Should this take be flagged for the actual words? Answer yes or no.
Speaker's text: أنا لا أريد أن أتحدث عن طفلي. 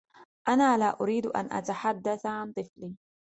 no